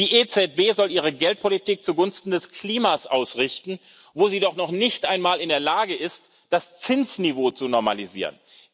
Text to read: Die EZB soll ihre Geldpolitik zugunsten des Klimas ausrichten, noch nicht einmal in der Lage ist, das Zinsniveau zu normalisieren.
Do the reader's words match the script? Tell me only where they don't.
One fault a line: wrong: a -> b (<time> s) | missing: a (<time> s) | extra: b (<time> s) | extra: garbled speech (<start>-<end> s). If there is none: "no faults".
extra: wo sie doch (4.1 s)